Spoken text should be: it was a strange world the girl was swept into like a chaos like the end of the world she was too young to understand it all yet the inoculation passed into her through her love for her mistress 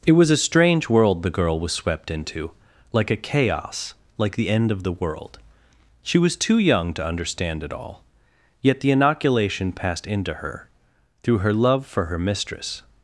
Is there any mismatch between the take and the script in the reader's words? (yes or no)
no